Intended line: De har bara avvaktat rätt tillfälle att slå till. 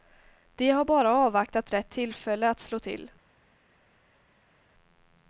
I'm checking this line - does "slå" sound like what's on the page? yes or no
yes